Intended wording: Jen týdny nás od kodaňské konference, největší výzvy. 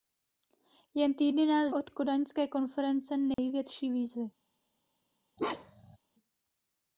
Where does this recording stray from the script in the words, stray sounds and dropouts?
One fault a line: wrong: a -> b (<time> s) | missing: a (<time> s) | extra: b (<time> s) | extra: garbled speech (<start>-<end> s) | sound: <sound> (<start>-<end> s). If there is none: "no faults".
sound: dropout (3.3-3.4 s)
sound: bark (5.4-6.0 s)